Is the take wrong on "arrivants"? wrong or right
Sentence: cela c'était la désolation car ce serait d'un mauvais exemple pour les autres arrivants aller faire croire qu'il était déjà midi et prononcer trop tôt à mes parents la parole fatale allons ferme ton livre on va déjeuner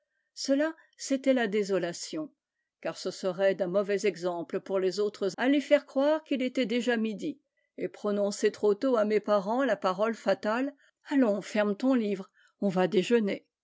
wrong